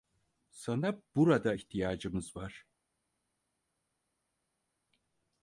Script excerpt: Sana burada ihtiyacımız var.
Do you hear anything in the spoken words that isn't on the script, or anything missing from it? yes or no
no